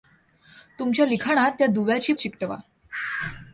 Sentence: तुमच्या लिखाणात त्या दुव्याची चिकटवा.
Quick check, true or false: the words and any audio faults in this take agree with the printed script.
true